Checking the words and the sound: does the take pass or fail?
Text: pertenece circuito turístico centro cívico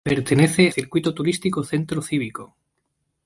pass